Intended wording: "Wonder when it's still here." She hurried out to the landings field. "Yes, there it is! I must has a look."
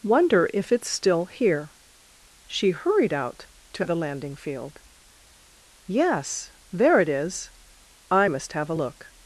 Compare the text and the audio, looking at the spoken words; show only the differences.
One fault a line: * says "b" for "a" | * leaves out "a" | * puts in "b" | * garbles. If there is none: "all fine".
* says "if" for "when"
* says "landing" for "landings"
* says "have" for "has"